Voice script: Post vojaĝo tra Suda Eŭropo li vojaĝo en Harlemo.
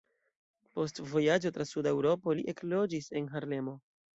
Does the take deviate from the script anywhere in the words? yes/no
yes